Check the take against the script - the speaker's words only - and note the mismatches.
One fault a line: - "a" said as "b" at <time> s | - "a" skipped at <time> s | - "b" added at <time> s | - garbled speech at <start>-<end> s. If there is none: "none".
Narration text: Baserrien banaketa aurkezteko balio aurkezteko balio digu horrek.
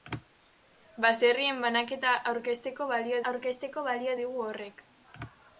none